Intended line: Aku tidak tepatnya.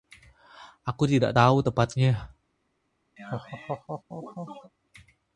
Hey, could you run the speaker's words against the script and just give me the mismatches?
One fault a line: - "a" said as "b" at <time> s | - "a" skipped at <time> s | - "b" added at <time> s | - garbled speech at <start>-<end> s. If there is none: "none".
- "tahu" added at 1.3 s